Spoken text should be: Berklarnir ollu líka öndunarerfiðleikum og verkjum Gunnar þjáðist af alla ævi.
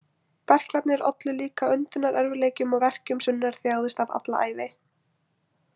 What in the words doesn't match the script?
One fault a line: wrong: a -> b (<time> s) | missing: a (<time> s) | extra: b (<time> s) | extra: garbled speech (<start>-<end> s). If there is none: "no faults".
no faults